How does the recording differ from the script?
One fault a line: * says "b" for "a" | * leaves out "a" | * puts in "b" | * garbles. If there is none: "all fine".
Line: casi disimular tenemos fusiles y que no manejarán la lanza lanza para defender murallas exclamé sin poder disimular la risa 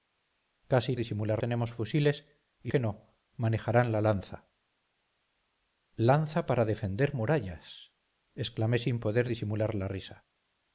all fine